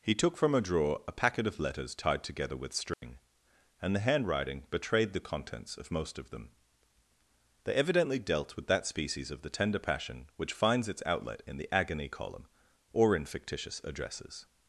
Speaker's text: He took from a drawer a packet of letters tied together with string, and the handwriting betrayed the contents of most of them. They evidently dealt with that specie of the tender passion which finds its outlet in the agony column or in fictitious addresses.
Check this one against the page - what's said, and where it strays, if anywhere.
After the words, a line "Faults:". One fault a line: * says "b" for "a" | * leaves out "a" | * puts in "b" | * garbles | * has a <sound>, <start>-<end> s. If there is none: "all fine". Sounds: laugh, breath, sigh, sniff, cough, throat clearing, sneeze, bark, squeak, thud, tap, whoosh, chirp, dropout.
He took from a drawer a packet of letters tied together with string, and the handwriting betrayed the contents of most of them. They evidently dealt with that species of the tender passion which finds its outlet in the agony column or in fictitious addresses.
Faults:
* has a dropout, 2.9-3.0 s
* says "species" for "specie"